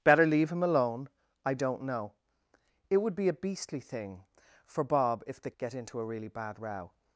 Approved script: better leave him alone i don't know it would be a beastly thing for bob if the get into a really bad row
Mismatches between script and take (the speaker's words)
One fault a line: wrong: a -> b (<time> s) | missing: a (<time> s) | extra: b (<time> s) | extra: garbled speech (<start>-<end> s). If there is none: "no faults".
no faults